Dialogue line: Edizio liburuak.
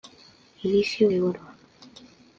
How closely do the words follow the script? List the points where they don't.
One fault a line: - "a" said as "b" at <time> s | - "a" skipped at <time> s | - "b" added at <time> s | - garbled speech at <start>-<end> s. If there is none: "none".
none